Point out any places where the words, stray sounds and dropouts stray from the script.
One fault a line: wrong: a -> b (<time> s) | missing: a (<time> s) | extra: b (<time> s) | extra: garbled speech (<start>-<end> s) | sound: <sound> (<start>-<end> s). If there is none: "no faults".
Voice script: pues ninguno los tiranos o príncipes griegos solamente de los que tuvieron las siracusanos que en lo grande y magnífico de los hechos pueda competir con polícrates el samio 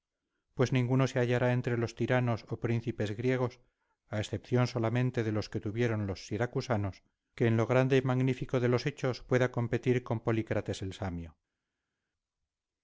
extra: se hallará entre (1.1 s)
extra: a excepción (4.1 s)
wrong: las -> los (6.1 s)